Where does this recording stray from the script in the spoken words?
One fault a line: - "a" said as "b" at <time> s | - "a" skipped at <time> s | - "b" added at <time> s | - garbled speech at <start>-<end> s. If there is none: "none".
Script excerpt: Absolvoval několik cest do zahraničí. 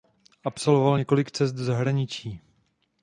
none